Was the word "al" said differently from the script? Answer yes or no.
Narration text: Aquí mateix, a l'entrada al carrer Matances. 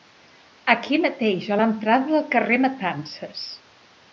yes